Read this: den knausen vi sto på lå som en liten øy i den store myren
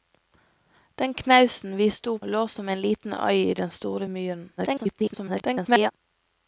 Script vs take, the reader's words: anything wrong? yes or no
yes